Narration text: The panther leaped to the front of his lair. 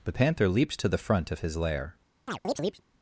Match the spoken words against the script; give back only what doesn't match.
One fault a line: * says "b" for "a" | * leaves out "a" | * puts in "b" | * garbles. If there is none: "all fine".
* says "leaps" for "leaped"